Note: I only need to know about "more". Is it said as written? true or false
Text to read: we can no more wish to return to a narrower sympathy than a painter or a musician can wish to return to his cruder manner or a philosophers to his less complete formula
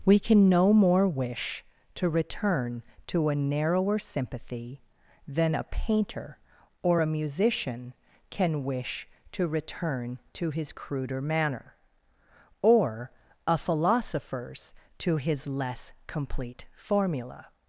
true